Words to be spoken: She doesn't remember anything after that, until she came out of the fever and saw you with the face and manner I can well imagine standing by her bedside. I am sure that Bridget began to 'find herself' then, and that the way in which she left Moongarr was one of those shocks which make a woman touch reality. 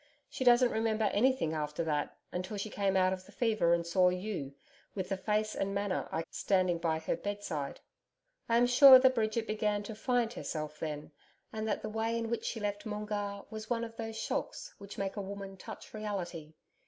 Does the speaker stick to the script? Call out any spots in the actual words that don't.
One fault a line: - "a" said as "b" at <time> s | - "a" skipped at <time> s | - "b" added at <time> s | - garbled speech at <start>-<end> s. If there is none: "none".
- "can well imagine" skipped at 6.2 s